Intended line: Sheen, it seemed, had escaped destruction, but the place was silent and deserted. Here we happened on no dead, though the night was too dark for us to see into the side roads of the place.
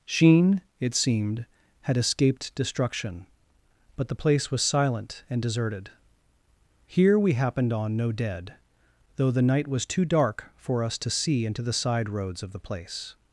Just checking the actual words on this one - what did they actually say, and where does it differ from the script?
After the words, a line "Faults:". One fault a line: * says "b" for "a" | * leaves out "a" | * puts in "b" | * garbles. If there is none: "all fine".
Sheen, it seemed, had escaped destruction, but the place was silent and deserted. Here we happened on no dead, though the night was too dark for us to see into the side roads of the place.
Faults:
all fine